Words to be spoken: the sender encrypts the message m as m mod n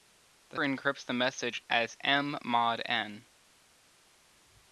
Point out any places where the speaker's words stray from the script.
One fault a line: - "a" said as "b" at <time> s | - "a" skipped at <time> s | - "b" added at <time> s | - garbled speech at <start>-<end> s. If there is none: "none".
- "sender" skipped at 0.6 s
- "m" skipped at 1.6 s